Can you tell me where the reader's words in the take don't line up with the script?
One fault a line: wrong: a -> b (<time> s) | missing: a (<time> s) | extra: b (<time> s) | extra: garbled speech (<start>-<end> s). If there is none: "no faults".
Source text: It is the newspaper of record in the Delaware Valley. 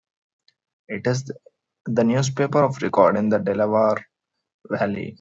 no faults